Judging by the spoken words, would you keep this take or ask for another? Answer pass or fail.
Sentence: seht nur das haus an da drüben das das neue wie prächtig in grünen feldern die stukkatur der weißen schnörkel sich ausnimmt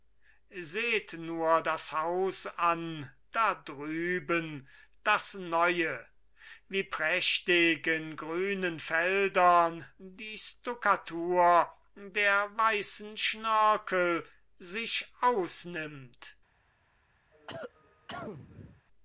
fail